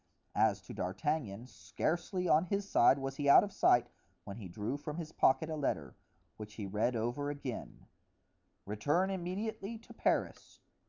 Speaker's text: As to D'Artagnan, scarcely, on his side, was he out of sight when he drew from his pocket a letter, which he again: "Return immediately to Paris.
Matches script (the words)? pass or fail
fail